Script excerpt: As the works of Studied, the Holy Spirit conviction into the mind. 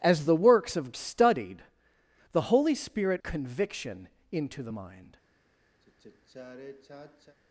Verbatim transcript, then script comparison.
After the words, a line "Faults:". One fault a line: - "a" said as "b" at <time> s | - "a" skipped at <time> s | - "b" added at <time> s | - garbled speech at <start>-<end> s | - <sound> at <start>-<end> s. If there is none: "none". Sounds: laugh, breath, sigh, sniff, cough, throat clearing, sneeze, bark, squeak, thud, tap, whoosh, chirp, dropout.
As the works of Studied, the Holy Spirit conviction into the mind.
Faults:
- sigh at 5.8-7.4 s